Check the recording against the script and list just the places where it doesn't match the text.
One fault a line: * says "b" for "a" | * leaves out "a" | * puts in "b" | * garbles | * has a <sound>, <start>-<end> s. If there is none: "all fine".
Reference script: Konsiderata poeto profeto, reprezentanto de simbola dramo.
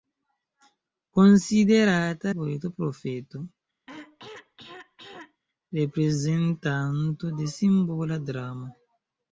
* has a throat clearing, 3.9-5.4 s